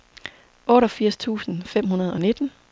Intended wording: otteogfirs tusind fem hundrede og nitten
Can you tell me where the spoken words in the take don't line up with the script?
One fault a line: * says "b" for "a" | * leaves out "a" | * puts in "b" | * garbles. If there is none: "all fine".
all fine